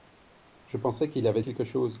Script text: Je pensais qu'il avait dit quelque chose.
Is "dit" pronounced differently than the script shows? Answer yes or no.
yes